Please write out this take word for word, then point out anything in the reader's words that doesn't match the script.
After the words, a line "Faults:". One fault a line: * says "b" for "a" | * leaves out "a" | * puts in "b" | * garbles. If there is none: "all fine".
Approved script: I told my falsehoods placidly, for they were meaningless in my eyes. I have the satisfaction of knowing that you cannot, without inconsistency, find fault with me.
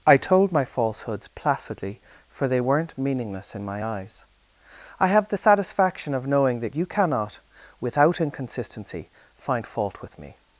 I told my falsehoods placidly, for they weren't meaningless in my eyes. I have the satisfaction of knowing that you cannot, without inconsistency, find fault with me.
Faults:
* says "weren't" for "were"